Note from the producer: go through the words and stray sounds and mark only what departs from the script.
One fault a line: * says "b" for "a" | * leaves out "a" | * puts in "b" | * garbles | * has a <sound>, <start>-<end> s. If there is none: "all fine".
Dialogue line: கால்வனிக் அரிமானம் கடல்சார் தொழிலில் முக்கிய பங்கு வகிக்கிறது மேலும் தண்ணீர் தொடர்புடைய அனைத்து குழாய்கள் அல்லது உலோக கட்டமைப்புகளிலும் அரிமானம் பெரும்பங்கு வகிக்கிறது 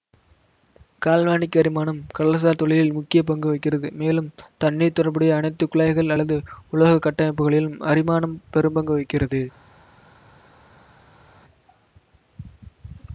all fine